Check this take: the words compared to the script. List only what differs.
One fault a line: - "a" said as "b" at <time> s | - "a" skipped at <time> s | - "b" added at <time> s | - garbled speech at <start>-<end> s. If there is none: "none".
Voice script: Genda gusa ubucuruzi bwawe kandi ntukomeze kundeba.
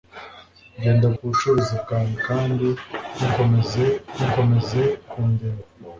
- "gusa" skipped at 1.1 s
- "ntukomeze" added at 4.1 s